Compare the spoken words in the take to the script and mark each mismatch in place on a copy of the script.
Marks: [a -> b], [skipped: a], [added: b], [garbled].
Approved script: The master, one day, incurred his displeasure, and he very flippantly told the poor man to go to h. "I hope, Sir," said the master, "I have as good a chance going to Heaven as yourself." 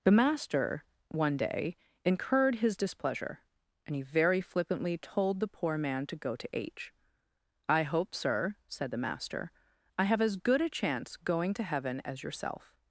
The master, one day, incurred his displeasure, and he very flippantly told the poor man to go to h. "I hope, Sir," said the master, "I have as good a chance going to Heaven as yourself."